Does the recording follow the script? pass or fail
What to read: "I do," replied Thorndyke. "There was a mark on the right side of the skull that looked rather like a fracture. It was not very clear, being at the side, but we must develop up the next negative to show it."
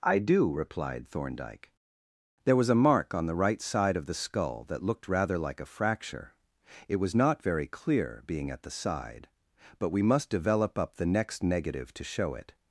pass